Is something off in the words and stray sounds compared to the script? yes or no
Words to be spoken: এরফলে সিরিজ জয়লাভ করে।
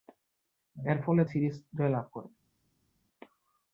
no